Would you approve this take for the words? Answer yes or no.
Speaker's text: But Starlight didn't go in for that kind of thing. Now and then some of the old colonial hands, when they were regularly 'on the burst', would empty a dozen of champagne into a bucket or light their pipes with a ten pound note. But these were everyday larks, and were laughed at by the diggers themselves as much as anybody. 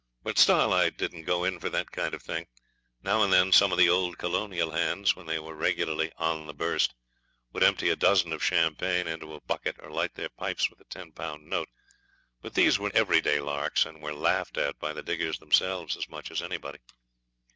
yes